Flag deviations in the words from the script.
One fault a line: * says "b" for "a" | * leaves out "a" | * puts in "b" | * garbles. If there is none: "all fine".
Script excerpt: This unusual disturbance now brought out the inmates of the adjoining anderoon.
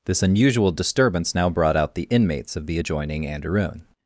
all fine